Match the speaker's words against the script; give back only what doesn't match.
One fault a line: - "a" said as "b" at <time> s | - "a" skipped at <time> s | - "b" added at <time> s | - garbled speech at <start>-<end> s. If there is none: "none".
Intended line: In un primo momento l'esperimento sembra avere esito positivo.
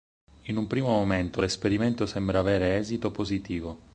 none